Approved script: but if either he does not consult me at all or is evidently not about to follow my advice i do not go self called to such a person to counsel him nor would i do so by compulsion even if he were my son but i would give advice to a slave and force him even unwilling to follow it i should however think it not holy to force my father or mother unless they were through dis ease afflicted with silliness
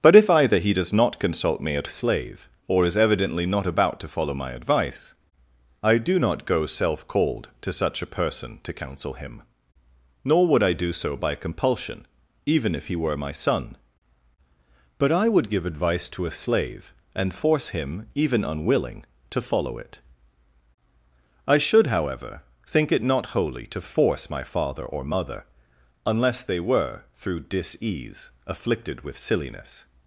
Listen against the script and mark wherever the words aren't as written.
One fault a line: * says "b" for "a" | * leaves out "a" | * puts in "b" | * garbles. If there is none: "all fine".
* says "slave" for "all"